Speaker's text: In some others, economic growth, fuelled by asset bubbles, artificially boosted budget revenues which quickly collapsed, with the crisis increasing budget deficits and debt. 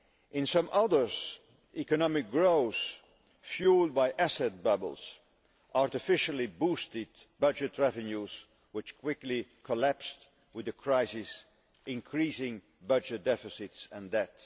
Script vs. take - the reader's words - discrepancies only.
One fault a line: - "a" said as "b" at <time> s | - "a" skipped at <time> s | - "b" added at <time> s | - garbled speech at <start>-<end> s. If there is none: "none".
none